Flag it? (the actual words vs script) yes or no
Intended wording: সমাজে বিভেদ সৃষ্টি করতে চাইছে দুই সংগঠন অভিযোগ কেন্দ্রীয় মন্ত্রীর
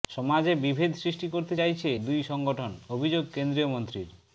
no